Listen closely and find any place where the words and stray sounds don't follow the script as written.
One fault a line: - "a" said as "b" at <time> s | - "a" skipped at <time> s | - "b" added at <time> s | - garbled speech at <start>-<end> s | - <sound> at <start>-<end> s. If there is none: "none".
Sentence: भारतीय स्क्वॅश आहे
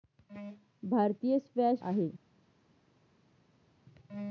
none